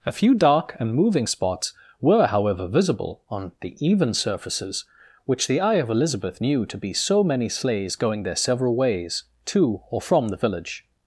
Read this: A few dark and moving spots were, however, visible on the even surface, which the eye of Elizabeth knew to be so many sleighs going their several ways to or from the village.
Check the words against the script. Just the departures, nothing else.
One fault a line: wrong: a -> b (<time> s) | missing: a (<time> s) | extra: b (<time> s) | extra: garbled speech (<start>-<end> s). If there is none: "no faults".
wrong: surface -> surfaces (4.1 s)